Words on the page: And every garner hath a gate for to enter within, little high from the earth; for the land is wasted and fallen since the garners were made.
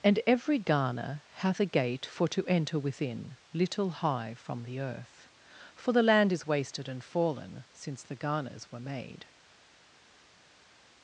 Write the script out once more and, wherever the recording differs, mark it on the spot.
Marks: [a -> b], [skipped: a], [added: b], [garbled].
And every garner hath a gate for to enter within, little high from the earth; for the land is wasted and fallen since the garners were made.